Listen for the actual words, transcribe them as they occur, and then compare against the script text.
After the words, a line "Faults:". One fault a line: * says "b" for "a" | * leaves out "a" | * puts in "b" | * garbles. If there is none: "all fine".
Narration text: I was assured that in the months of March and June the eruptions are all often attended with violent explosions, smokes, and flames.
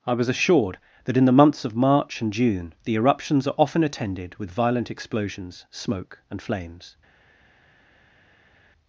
I was assured that in the months of March and June the eruptions are often attended with violent explosions, smoke, and flames.
Faults:
* leaves out "all"
* says "smoke" for "smokes"